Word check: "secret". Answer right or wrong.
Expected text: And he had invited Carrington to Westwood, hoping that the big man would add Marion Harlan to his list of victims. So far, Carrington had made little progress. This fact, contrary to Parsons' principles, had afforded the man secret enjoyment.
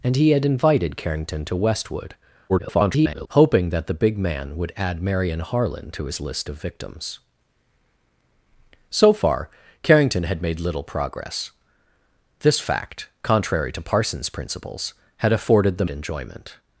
wrong